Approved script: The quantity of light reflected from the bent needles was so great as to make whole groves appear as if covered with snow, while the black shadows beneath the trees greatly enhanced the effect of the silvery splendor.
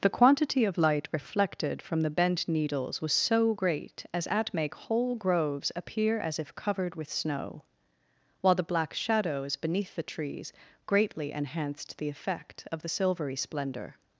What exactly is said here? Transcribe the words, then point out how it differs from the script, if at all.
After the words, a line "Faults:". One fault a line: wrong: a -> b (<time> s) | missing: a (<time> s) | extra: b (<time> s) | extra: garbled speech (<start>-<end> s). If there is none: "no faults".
The quantity of light reflected from the bent needles was so great as at make whole groves appear as if covered with snow, while the black shadows beneath the trees greatly enhanced the effect of the silvery splendor.
Faults:
wrong: to -> at (4.3 s)